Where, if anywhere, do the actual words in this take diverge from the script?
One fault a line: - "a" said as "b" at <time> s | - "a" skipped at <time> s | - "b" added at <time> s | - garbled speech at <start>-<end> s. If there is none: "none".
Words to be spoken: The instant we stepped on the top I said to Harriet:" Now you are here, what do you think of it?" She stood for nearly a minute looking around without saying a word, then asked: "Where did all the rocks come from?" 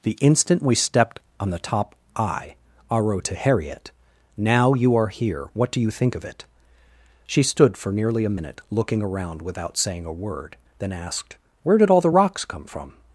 - "said" said as "aro" at 2.9 s